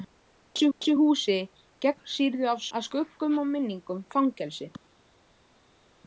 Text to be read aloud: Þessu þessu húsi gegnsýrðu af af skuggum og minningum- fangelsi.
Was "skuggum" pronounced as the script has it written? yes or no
yes